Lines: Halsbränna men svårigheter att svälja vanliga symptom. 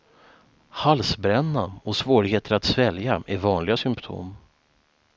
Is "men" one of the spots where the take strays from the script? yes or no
yes